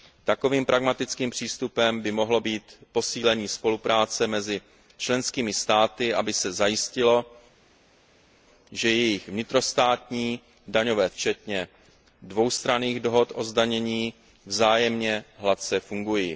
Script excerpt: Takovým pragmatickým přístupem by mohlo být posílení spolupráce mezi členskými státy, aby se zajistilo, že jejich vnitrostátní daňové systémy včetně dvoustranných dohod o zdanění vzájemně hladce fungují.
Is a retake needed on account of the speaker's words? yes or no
yes